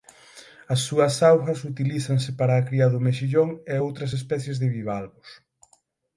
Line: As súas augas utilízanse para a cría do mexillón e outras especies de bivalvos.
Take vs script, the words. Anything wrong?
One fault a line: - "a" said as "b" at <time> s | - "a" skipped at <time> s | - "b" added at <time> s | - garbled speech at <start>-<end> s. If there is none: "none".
none